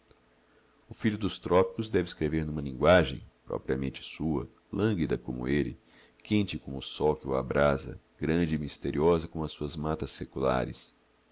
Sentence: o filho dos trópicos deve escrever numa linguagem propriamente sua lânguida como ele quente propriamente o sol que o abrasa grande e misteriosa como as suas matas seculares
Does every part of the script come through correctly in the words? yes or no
no